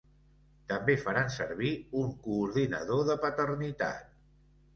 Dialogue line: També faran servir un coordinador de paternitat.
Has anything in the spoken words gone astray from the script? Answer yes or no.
no